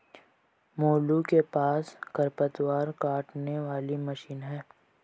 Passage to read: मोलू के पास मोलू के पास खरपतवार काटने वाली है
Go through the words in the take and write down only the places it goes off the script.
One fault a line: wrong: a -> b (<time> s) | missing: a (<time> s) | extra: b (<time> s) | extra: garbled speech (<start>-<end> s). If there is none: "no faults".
missing: मोलू के पास (1.9 s)
extra: मशीन (4.0 s)